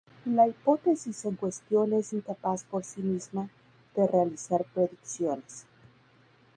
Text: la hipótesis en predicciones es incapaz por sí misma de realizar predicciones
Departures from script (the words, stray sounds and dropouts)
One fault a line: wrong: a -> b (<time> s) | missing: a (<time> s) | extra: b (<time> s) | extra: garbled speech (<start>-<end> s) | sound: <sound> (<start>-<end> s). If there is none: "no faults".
wrong: predicciones -> cuestión (1.4 s)